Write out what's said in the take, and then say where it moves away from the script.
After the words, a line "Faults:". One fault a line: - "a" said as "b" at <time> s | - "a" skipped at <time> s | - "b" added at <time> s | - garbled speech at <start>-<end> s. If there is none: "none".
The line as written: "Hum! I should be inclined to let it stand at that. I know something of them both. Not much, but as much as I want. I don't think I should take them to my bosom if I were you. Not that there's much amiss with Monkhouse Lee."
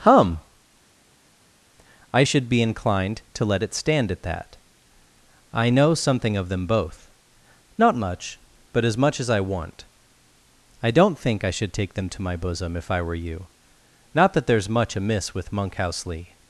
"Hum! I should be inclined to let it stand at that. I know something of them both. Not much, but as much as I want. I don't think I should take them to my bosom if I were you. Not that there's much amiss with Monkhouse Lee."
Faults:
none